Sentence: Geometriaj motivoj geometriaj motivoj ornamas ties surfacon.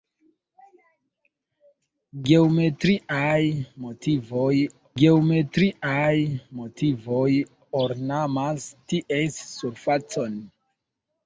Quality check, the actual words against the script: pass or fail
pass